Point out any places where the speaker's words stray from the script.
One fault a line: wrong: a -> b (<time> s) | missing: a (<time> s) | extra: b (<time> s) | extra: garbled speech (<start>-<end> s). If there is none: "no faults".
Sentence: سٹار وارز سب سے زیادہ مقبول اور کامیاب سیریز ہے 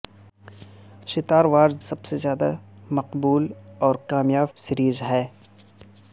no faults